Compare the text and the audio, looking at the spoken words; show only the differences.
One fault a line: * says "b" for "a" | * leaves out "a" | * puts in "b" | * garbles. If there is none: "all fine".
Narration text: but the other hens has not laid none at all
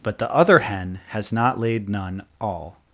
* says "hen" for "hens"
* leaves out "at"